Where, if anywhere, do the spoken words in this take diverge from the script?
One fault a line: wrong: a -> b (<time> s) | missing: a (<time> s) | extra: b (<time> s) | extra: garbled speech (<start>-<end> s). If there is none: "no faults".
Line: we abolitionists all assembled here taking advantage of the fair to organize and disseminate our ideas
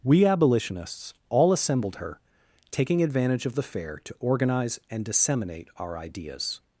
wrong: here -> her (2.0 s)